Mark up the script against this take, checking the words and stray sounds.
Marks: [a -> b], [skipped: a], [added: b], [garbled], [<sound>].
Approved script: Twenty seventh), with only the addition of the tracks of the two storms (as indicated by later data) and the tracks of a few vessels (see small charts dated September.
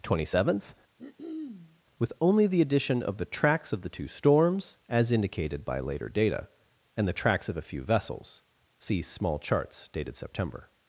Twenty seventh), [throat clearing] with only the addition of the tracks of the two storms (as indicated by later data) and the tracks of a few vessels (see small charts dated September.